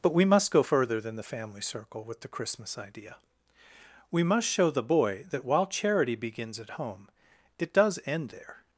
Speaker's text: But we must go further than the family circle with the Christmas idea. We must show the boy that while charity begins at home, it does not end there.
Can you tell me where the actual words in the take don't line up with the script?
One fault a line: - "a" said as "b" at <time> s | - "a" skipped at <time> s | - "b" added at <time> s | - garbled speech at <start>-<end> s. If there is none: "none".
- "not" skipped at 8.0 s